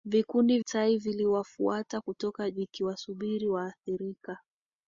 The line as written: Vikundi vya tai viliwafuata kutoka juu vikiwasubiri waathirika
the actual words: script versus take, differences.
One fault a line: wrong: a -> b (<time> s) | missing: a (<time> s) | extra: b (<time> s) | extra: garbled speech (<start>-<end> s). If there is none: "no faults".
missing: vya (0.6 s)
missing: juu (2.5 s)